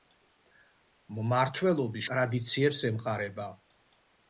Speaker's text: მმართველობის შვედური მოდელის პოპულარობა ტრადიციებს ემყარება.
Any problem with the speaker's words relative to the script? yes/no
yes